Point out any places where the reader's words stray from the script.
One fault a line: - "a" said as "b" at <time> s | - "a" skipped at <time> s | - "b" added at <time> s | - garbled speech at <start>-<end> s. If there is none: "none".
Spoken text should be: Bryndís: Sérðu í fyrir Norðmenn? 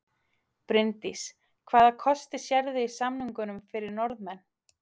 - "Hvaða kosti" added at 1.7 s
- "samningunum" added at 3.0 s